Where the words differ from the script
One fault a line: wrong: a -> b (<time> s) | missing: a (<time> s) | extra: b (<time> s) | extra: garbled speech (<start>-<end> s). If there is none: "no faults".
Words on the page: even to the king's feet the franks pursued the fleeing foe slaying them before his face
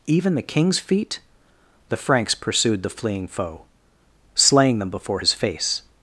missing: to (0.3 s)